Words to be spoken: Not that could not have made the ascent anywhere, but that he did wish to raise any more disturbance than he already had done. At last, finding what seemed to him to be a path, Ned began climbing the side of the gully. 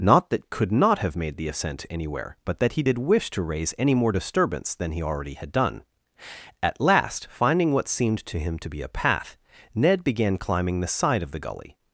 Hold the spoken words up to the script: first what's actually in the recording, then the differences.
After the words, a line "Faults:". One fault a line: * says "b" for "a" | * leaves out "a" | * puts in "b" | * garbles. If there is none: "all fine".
Not that could not have made the ascent anywhere, but that he did wish to raise any more disturbance than he already had done. At last, finding what seemed to him to be a path, Ned began climbing the side of the gully.
Faults:
all fine